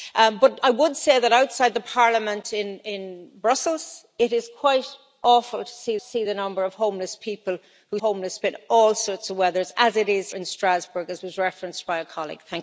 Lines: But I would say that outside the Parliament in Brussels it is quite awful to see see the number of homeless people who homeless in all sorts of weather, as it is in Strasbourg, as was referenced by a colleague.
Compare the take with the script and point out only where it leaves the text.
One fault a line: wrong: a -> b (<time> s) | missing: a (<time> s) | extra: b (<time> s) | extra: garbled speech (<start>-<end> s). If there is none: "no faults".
no faults